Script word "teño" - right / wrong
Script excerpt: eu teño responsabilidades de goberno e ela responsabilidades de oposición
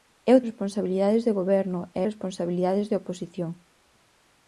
wrong